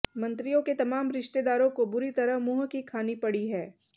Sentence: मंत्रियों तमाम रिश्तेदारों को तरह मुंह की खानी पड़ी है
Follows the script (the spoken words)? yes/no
no